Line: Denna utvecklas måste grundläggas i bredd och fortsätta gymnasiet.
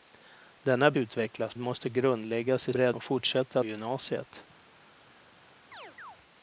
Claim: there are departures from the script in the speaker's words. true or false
false